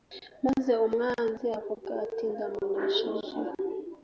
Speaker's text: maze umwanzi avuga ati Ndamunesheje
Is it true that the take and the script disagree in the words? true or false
false